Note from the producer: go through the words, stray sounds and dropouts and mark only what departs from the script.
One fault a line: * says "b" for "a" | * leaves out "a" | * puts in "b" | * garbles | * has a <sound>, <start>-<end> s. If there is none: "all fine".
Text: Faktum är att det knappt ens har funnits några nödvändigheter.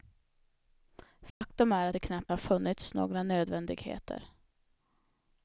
* has a dropout, 1.3-1.4 s
* leaves out "ens"